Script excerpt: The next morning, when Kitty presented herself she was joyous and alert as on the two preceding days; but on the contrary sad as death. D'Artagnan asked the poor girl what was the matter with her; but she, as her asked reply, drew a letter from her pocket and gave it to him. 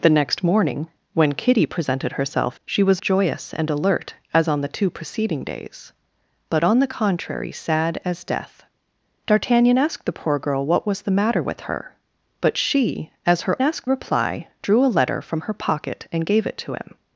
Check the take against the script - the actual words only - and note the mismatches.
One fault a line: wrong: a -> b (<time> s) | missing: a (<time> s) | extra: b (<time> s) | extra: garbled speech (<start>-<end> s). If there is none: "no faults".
no faults